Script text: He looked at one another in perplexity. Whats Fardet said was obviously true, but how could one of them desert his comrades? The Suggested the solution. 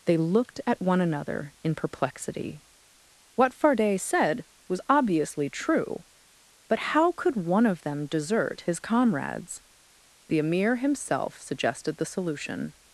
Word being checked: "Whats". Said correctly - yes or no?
no